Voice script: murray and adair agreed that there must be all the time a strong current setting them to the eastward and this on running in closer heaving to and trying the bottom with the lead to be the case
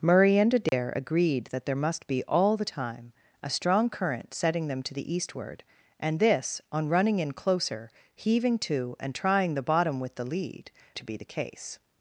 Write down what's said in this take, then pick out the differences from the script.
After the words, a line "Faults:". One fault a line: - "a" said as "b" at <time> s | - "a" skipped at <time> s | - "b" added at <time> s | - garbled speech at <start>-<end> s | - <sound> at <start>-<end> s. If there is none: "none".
murray and adair agreed that there must be all the time a strong current setting them to the eastward and this on running in closer heaving to and trying the bottom with the lead to be the case
Faults:
- dropout at 0.7-0.7 s